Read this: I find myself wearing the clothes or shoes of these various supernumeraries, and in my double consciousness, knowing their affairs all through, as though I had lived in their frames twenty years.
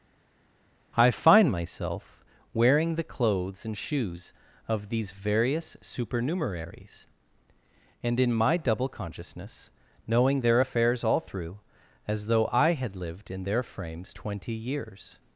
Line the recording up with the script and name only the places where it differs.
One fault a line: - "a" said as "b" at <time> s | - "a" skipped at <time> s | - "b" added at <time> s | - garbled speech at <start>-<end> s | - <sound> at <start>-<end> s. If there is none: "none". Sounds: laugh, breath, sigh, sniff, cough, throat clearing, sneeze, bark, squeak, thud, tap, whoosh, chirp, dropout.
- "or" said as "and" at 3.6 s